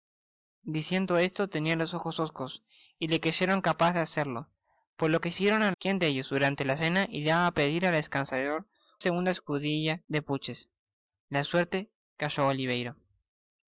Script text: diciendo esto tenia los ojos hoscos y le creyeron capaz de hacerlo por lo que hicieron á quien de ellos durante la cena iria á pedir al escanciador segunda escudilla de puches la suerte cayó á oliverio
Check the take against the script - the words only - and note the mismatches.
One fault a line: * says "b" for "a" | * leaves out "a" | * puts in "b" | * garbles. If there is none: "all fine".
all fine